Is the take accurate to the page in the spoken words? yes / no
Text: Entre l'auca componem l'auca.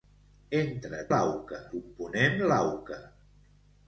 yes